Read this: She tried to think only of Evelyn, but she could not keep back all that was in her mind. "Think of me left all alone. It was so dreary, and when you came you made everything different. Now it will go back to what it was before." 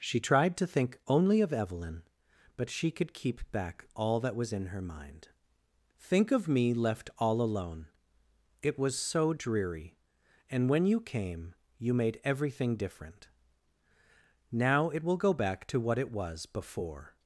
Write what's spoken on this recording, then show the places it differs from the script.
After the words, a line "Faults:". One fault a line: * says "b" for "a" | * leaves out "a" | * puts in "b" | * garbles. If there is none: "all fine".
She tried to think only of Evelyn, but she could keep back all that was in her mind. "Think of me left all alone. It was so dreary, and when you came you made everything different. Now it will go back to what it was before."
Faults:
* leaves out "not"